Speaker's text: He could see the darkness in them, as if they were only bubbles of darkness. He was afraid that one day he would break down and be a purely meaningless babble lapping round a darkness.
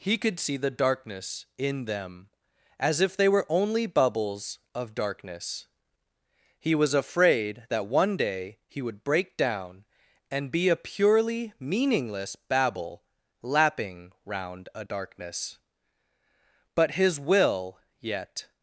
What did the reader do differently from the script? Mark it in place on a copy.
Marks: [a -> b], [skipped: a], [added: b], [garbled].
He could see the darkness in them, as if they were only bubbles of darkness. He was afraid that one day he would break down and be a purely meaningless babble lapping round a darkness. [added: But his will yet]